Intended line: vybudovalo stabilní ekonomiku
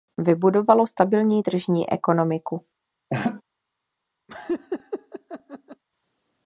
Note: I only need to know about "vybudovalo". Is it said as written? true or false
true